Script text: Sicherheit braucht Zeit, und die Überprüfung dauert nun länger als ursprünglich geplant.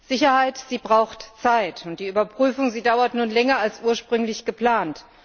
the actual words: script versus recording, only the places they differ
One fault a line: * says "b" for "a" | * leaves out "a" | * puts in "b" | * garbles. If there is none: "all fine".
all fine